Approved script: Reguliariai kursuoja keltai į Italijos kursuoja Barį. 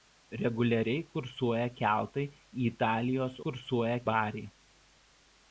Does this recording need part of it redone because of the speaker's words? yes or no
no